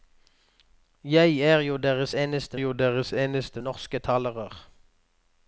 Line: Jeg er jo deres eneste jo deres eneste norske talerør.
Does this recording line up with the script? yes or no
yes